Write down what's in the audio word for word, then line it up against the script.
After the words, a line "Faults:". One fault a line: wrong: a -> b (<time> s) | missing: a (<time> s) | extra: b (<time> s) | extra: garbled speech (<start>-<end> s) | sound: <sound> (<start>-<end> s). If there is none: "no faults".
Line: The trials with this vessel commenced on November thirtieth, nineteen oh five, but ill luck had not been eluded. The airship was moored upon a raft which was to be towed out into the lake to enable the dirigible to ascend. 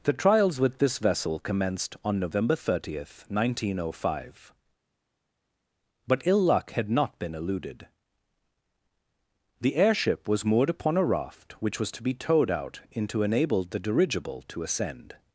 The trials with this vessel commenced on November thirtieth, nineteen oh five, but ill luck had not been eluded. The airship was moored upon a raft which was to be towed out into enable the dirigible to ascend.
Faults:
missing: the lake to (13.2 s)